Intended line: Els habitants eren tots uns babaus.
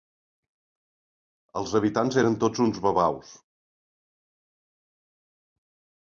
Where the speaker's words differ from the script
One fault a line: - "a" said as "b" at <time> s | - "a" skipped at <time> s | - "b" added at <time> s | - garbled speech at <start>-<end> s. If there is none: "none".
none